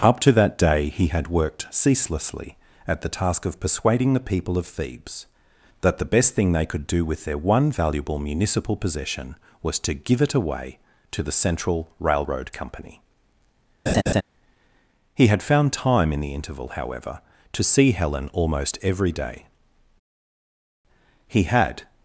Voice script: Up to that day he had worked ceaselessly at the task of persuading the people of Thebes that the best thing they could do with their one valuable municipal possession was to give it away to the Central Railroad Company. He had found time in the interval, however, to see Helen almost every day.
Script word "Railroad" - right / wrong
right